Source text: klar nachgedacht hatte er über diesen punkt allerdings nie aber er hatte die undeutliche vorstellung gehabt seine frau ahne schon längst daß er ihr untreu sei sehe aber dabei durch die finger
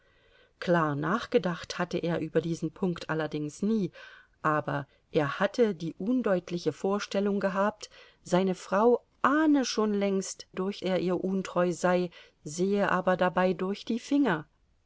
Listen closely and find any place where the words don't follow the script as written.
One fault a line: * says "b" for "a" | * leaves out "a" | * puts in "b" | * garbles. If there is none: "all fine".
* says "durch" for "daß"